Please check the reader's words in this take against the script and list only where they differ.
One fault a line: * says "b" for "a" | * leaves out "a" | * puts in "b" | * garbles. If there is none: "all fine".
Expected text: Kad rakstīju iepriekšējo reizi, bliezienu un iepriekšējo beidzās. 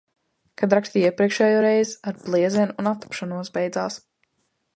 * puts in "ar"
* says "attapšanos" for "iepriekšējo"